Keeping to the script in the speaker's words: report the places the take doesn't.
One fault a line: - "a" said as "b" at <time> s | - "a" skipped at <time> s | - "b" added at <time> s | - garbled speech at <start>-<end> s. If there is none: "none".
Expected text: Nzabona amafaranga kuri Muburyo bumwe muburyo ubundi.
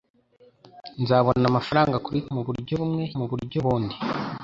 none